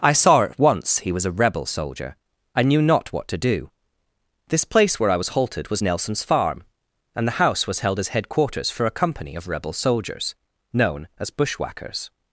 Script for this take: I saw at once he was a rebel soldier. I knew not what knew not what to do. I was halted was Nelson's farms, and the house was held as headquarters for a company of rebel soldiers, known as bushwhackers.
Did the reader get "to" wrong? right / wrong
wrong